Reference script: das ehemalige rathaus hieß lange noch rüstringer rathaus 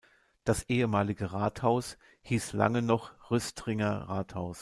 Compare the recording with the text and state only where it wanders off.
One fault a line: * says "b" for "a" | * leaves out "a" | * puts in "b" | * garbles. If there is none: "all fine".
all fine